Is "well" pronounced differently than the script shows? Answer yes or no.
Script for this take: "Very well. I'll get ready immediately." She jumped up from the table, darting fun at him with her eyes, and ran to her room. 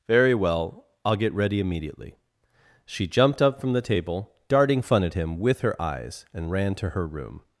no